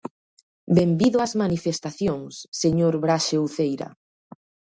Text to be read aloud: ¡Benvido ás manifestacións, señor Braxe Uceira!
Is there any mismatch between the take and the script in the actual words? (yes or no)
no